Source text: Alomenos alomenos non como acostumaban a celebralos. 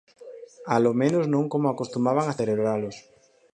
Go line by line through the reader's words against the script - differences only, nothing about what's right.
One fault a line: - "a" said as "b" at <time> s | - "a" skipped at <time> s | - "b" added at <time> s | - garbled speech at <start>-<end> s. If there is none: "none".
- "alomenos" skipped at 1.2 s